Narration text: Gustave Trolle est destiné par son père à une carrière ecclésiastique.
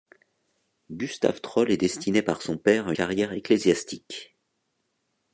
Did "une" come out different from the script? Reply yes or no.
yes